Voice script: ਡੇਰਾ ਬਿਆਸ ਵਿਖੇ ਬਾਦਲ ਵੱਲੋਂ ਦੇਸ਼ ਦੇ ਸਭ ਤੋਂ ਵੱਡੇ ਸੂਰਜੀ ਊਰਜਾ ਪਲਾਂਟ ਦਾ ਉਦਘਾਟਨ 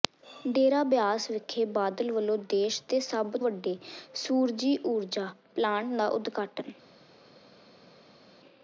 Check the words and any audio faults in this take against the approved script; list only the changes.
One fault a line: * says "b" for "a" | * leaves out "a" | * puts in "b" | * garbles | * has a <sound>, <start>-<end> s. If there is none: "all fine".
* leaves out "ਤੋਂ"